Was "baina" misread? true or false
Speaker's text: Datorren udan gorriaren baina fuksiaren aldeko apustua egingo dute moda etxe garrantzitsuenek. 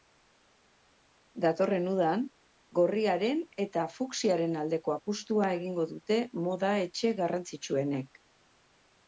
true